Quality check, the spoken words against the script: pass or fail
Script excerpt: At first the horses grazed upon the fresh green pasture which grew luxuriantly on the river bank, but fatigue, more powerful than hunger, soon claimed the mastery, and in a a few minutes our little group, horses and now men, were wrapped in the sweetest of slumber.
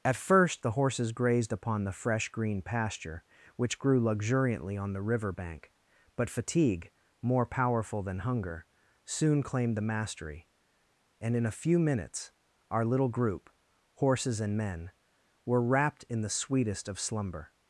fail